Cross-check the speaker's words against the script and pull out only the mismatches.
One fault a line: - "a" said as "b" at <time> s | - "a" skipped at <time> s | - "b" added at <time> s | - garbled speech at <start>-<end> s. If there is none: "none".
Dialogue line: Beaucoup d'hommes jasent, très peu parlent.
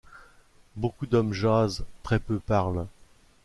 none